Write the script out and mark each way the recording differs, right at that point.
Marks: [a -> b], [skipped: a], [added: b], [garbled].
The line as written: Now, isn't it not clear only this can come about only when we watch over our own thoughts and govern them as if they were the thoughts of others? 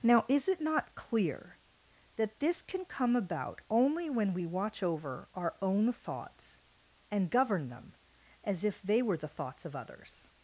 Now, [isn't -> is] it not clear [only -> that] this can come about only when we watch over our own thoughts and govern them as if they were the thoughts of others?